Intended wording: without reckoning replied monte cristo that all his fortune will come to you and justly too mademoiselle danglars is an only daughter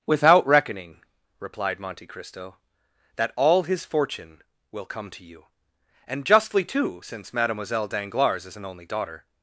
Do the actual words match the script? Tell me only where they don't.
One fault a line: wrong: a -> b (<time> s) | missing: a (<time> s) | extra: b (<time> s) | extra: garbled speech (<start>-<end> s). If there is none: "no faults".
extra: since (7.0 s)